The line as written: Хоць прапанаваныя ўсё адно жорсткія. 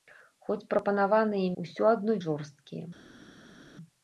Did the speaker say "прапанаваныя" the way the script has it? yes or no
yes